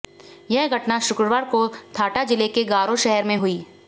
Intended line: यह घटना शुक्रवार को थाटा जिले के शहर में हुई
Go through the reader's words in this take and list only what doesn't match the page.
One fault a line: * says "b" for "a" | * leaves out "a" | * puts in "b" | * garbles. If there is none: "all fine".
* puts in "गारो"